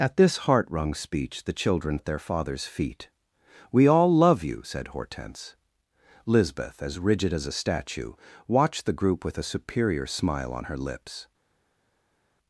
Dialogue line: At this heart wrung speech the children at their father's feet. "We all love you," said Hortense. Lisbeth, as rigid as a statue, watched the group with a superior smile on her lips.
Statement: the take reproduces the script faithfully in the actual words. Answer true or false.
true